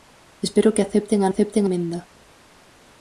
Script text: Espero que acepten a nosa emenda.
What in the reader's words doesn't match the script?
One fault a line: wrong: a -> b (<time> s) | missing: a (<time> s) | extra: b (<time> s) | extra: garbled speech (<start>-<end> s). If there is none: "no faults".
wrong: nosa -> acepten (1.3 s)